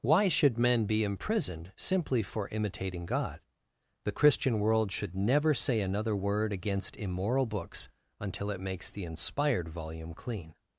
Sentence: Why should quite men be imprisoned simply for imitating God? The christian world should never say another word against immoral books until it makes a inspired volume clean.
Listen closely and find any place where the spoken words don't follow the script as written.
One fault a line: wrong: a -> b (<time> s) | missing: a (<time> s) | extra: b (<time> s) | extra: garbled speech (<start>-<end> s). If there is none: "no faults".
missing: quite (0.6 s)
wrong: a -> the (8.9 s)